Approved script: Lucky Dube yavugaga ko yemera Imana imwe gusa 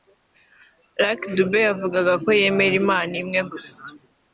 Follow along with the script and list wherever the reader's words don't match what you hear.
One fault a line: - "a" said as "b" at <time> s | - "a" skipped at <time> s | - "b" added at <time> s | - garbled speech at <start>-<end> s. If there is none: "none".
none